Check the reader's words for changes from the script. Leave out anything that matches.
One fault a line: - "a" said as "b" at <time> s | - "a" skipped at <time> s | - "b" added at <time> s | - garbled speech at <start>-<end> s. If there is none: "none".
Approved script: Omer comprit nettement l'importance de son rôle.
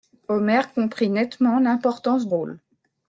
- "de son" skipped at 2.3 s